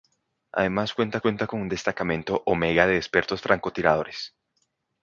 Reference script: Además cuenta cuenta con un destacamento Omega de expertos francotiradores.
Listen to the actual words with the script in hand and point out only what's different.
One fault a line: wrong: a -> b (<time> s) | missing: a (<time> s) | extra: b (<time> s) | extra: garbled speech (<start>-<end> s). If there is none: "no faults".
no faults